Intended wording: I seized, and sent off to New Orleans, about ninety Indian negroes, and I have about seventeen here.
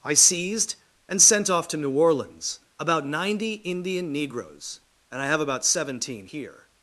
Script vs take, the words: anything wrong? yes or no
no